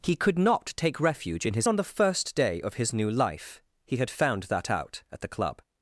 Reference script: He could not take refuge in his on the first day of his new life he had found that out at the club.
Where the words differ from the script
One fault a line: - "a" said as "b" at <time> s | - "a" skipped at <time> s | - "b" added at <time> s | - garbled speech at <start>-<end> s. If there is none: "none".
none